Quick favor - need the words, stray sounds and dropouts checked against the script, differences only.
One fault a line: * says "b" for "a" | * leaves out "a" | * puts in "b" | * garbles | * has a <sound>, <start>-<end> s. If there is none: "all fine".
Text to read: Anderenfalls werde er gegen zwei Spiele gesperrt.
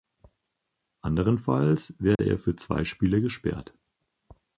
* has a dropout, 2.1-2.2 s
* says "für" for "gegen"